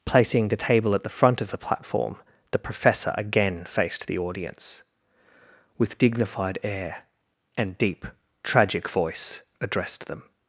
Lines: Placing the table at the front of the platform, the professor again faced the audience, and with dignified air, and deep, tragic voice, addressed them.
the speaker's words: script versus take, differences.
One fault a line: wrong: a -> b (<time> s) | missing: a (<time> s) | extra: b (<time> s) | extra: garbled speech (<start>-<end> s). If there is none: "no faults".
missing: and (4.8 s)